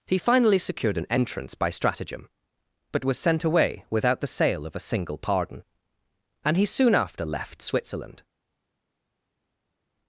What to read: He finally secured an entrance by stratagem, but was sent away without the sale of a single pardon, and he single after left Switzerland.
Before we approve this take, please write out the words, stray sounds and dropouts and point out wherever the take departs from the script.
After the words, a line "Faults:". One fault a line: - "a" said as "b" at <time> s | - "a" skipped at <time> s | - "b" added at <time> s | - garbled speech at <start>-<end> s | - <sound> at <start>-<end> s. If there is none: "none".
He finally secured an entrance by stratagem, but was sent away without the sale of a single pardon, and he soon after left Switzerland.
Faults:
- "single" said as "soon" at 6.6 s